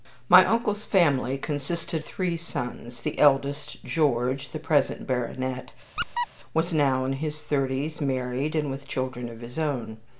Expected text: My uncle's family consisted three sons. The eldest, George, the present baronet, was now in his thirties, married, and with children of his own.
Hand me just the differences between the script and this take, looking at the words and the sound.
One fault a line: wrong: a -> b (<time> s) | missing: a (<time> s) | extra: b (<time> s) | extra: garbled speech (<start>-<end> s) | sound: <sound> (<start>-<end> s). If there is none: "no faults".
sound: squeak (6.0-6.3 s)